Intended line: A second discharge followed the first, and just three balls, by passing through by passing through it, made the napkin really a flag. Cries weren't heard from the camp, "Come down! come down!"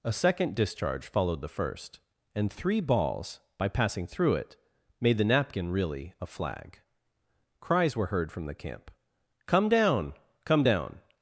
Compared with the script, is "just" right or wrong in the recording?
wrong